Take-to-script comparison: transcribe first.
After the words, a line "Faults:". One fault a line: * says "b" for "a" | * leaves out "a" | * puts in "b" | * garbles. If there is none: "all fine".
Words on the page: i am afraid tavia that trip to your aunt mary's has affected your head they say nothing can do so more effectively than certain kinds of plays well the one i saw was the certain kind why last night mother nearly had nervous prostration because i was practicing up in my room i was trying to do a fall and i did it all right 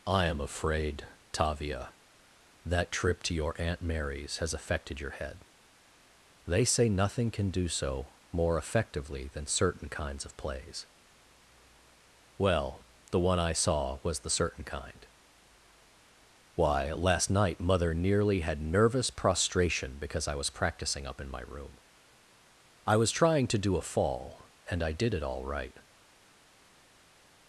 i am afraid tavia that trip to your aunt mary's has affected your head they say nothing can do so more effectively than certain kinds of plays well the one i saw was the certain kind why last night mother nearly had nervous prostration because i was practicing up in my room i was trying to do a fall and i did it all right
Faults:
all fine